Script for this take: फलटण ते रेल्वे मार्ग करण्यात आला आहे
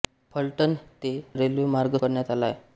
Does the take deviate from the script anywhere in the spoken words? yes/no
no